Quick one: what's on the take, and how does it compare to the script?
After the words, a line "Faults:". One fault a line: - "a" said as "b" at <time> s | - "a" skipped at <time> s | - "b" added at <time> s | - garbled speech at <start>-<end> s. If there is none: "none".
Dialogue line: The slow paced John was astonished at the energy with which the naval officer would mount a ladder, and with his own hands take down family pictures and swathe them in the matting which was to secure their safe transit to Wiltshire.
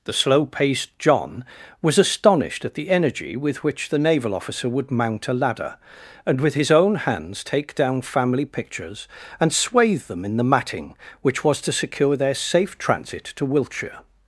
The slow paced John was astonished at the energy with which the naval officer would mount a ladder, and with his own hands take down family pictures and swathe them in the matting which was to secure their safe transit to Wiltshire.
Faults:
none